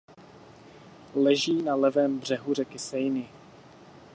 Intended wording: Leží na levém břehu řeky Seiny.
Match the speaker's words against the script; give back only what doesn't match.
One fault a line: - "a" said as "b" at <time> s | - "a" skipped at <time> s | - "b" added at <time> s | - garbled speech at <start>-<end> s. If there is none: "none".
none